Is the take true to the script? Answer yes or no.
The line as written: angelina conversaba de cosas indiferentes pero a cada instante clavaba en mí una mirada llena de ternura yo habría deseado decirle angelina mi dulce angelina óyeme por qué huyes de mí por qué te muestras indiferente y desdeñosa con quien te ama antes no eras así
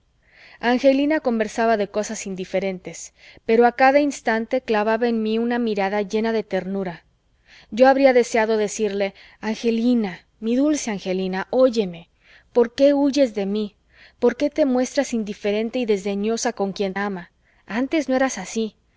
no